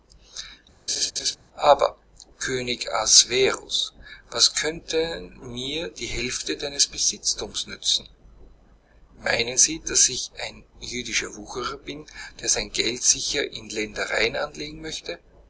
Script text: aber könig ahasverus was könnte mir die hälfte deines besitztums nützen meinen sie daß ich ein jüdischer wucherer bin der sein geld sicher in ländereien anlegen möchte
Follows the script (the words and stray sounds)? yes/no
no